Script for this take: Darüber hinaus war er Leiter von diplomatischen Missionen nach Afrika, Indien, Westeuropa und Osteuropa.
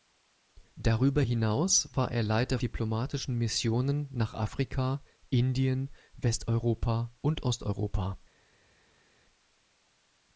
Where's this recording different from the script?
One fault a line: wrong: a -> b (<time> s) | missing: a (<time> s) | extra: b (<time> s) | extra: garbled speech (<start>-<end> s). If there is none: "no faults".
missing: von (2.6 s)